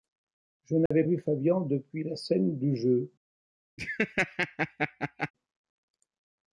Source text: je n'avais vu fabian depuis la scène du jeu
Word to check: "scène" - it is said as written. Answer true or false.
true